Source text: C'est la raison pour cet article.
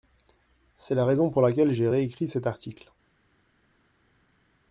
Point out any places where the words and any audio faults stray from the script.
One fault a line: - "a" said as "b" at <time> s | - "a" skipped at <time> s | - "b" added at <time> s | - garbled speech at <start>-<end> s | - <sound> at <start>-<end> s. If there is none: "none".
- "laquelle j'ai réécrit" added at 1.4 s